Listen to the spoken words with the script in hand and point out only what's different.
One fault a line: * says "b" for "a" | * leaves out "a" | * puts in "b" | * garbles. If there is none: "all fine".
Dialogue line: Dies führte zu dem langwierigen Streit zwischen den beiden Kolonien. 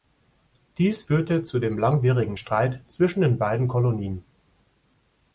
all fine